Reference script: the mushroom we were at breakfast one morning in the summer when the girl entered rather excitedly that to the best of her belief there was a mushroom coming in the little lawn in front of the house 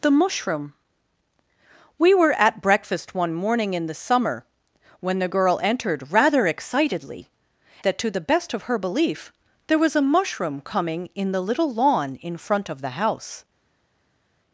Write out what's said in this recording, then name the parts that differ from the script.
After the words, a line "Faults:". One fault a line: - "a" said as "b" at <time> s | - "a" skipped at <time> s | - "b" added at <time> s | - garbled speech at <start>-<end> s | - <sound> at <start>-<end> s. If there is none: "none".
the mushroom we were at breakfast one morning in the summer when the girl entered rather excitedly that to the best of her belief there was a mushroom coming in the little lawn in front of the house
Faults:
none